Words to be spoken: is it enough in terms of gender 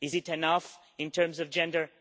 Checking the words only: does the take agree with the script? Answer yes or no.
yes